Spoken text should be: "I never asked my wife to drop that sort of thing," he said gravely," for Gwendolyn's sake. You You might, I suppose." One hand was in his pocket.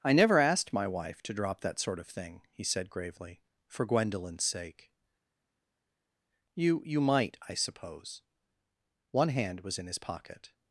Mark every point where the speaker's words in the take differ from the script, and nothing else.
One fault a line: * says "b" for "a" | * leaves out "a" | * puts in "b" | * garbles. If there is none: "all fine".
all fine